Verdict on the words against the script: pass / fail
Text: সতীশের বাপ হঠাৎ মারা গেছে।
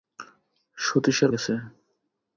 fail